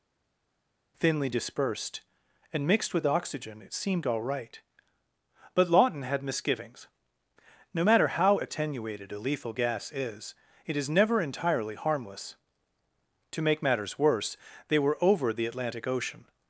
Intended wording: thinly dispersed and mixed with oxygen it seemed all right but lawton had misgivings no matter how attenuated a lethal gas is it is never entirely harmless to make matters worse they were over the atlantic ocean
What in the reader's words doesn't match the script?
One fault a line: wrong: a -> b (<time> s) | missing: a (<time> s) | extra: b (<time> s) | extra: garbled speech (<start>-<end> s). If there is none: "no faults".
no faults